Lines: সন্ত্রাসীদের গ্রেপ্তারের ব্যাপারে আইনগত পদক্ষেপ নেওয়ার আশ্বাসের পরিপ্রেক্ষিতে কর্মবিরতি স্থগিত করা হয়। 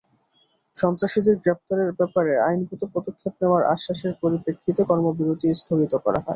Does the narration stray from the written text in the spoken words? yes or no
no